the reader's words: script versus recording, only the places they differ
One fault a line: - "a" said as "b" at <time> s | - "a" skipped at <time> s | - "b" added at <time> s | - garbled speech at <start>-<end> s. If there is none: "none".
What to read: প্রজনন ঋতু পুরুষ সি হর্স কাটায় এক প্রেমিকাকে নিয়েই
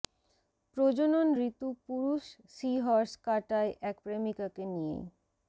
none